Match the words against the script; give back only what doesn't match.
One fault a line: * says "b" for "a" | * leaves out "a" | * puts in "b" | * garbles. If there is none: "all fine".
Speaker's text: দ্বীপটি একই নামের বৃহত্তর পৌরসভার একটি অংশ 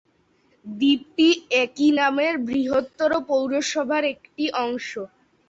all fine